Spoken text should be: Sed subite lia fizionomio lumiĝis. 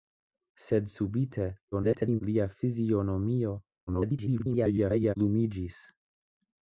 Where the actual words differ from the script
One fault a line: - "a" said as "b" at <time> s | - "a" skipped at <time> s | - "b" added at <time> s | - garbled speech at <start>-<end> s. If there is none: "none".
- garbled speech at 1.7-2.2 s
- garbled speech at 3.9-5.2 s